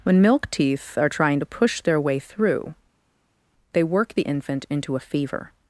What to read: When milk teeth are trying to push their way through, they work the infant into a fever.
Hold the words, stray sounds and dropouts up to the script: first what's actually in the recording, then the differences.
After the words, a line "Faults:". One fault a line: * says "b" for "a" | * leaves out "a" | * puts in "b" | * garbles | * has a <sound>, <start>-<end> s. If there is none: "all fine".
When milk teeth are trying to push their way through, they work the infant into a fever.
Faults:
all fine